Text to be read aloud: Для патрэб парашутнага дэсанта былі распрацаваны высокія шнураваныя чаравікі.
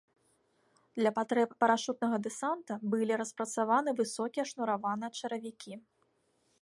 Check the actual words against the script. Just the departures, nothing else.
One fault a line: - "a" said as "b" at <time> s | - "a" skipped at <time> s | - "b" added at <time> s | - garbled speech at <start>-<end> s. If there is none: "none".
none